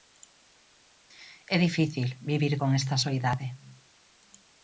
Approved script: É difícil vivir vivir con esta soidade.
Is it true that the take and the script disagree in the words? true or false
true